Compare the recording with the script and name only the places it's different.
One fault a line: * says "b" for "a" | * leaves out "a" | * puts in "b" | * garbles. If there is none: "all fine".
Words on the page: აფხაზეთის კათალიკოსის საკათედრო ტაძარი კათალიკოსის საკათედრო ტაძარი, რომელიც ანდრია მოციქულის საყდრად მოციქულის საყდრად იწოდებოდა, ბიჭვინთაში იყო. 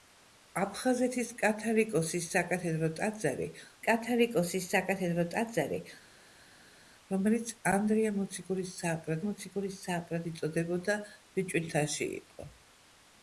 all fine